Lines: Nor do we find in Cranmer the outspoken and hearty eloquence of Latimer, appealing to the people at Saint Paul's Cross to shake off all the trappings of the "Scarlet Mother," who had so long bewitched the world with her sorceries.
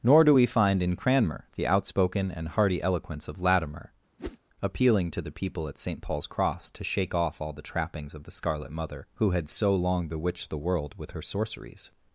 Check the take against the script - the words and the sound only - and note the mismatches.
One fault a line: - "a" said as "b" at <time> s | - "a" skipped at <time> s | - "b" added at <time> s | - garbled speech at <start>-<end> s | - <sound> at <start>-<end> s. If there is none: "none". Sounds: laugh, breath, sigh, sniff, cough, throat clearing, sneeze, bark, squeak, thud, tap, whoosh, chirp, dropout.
- whoosh at 4.2-4.4 s